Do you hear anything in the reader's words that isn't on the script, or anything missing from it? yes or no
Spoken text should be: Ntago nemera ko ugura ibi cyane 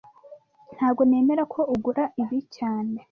no